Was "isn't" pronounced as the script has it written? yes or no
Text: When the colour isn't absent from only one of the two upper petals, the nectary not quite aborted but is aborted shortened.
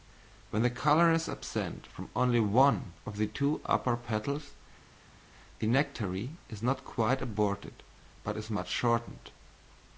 no